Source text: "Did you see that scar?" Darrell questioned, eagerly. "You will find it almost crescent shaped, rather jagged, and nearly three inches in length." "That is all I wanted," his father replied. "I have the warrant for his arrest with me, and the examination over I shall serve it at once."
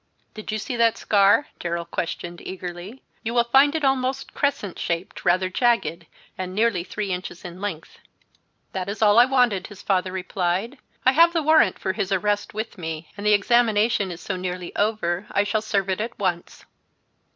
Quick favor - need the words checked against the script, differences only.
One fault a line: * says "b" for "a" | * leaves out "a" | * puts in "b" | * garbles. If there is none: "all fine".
* puts in "is so nearly"